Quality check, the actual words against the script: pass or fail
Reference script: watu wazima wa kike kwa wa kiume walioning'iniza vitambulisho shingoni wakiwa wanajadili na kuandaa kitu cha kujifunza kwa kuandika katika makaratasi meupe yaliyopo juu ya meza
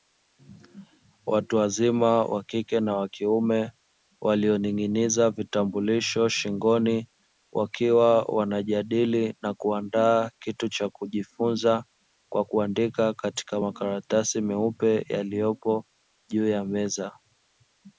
fail